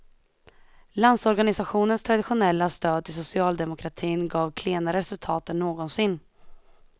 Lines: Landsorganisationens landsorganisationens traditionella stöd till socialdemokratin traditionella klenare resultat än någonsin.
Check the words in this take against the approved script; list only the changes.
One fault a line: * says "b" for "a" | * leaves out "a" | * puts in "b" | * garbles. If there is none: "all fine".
* leaves out "landsorganisationens"
* says "gav" for "traditionella"